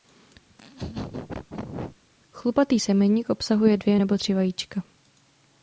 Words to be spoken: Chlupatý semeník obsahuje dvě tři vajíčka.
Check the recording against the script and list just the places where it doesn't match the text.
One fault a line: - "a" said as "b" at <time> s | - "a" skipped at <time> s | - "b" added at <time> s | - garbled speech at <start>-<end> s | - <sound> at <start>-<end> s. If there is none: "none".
- laugh at 0.5-2.0 s
- "nebo" added at 3.9 s